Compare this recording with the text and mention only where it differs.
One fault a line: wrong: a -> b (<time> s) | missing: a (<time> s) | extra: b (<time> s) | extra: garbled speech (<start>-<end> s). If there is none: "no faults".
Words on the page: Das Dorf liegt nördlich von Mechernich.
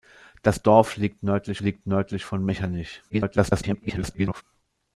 extra: liegt nördlich (1.6 s)
extra: garbled speech (3.1-4.4 s)